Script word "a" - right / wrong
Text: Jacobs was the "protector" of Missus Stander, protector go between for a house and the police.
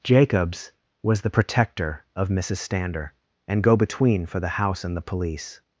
wrong